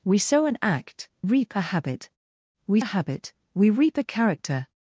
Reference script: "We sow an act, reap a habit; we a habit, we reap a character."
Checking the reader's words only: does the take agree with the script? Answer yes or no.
yes